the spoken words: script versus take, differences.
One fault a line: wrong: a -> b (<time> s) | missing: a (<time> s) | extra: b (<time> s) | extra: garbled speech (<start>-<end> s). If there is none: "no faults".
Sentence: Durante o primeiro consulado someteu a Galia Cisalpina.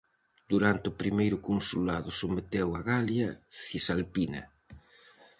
no faults